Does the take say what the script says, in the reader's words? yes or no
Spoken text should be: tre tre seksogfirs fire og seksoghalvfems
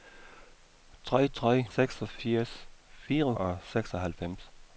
yes